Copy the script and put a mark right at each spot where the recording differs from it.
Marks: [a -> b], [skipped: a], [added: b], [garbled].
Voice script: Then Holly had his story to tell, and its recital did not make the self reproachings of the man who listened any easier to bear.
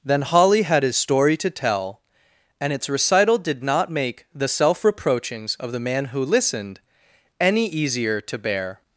Then Holly had his story to tell, and its recital did not make the self reproachings of the man who listened any easier to bear.